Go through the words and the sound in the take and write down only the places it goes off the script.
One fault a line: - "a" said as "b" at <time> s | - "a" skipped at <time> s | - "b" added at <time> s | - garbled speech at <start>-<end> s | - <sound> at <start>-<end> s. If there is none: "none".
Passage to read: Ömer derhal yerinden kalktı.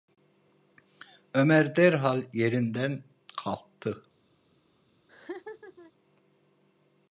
- laugh at 5.1-5.9 s